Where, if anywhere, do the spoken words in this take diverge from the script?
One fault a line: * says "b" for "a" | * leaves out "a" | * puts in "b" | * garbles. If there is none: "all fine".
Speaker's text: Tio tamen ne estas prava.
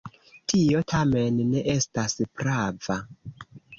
all fine